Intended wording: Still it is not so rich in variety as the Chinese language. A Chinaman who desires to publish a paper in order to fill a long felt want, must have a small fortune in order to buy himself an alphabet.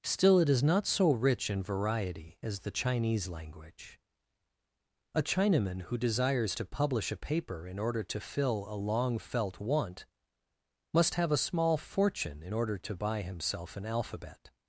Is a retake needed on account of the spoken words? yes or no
no